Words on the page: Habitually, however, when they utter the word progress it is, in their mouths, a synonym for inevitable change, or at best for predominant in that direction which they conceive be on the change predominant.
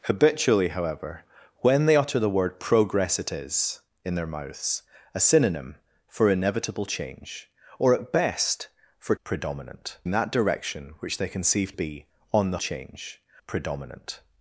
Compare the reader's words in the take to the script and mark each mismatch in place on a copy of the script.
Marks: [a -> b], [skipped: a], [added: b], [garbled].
Habitually, however, when they utter the word progress it is, in their mouths, a synonym for inevitable change, or at best for predominant in that direction which they conceive be on the change predominant.